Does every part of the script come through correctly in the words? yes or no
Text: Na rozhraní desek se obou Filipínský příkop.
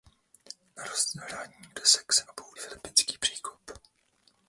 yes